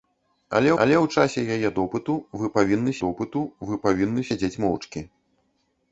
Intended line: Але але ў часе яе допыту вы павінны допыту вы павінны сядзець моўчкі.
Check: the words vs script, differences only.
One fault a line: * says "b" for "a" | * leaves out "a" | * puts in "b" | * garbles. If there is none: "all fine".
all fine